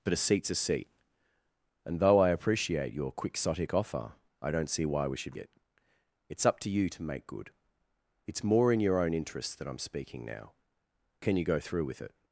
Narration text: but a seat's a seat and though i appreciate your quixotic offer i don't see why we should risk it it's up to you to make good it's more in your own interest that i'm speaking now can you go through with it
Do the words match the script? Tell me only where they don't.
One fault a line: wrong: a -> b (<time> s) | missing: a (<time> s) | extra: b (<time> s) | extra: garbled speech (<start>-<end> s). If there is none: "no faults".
missing: risk (5.4 s)